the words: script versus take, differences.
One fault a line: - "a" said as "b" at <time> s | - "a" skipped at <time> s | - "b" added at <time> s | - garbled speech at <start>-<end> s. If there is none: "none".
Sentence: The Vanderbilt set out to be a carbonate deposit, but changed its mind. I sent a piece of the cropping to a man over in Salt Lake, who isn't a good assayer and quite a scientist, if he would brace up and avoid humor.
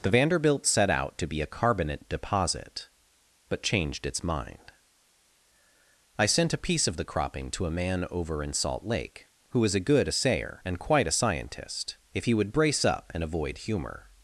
- "isn't" said as "is" at 9.6 s